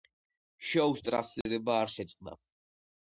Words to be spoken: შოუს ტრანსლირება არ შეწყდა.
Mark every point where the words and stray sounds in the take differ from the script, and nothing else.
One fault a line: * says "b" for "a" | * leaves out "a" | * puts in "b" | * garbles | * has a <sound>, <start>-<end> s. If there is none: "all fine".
* has a dropout, 1.4-1.5 s